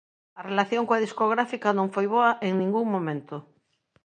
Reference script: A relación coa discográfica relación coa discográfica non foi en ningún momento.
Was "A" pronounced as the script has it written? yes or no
yes